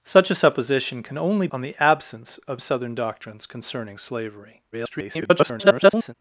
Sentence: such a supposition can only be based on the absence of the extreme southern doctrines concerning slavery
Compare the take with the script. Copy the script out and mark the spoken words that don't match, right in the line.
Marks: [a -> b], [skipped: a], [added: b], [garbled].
such a supposition can only [skipped: be based] on the absence of [skipped: the extreme] southern doctrines concerning slavery [garbled]